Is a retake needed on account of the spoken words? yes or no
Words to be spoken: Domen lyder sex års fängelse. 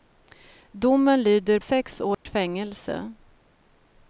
no